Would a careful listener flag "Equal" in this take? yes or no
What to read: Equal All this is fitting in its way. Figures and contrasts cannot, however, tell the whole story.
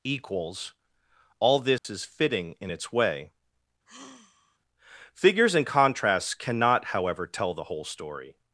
yes